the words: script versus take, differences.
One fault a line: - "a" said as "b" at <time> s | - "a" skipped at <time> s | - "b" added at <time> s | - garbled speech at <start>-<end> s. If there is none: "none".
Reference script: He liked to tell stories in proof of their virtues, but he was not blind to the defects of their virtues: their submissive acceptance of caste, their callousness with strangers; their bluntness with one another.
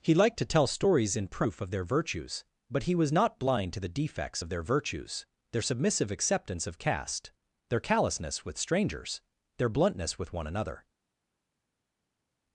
none